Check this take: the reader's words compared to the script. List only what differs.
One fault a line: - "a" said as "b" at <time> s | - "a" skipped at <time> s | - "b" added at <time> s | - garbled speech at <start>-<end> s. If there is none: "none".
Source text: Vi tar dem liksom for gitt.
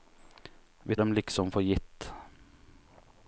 - "tar" skipped at 0.9 s